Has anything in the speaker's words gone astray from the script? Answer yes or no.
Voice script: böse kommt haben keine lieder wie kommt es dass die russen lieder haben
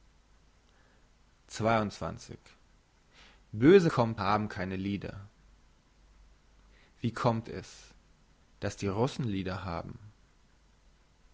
no